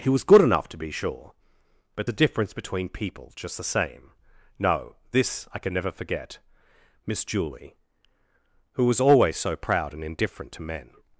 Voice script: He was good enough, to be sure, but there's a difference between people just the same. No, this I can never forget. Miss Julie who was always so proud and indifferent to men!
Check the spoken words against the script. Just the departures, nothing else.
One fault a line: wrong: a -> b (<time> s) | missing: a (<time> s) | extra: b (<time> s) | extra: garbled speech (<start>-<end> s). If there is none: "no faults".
missing: there's (2.1 s)